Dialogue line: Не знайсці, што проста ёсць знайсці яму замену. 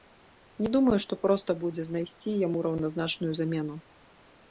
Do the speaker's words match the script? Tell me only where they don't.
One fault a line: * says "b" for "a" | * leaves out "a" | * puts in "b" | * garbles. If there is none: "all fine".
* says "думаю" for "знайсці"
* says "будзе" for "ёсць"
* puts in "раўназначную"